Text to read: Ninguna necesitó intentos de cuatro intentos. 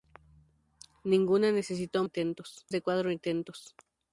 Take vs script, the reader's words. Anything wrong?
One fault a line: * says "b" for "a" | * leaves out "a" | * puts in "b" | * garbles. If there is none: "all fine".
all fine